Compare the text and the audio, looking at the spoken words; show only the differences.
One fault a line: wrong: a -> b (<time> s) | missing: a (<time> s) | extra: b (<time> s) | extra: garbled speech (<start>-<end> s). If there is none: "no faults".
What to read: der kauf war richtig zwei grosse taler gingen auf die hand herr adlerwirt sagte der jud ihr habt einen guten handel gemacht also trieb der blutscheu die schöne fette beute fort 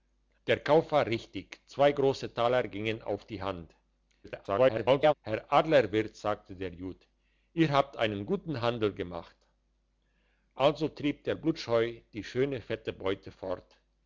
extra: garbled speech (4.2-5.1 s)